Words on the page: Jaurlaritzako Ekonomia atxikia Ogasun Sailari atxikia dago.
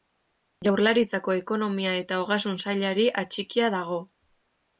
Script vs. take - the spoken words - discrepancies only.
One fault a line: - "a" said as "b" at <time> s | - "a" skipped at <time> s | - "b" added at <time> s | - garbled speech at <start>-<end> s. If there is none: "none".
- "atxikia" said as "eta" at 2.0 s